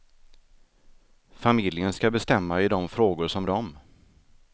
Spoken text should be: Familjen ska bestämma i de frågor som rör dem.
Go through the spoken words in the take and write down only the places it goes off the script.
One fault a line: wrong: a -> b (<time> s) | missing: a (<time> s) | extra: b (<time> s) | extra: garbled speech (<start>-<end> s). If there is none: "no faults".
missing: rör (3.5 s)